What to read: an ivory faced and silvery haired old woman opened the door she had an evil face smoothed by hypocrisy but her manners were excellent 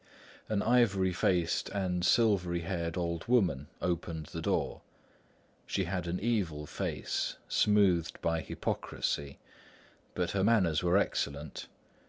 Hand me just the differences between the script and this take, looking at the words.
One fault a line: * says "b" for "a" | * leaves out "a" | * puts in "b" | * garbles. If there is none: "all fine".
all fine